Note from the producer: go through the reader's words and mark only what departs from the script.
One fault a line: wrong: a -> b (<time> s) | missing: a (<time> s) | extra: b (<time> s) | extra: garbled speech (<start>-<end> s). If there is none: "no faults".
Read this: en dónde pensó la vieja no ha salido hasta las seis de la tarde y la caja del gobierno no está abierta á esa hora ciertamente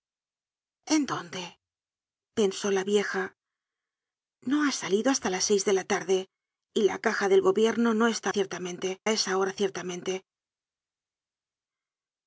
wrong: abierta -> ciertamente (8.3 s)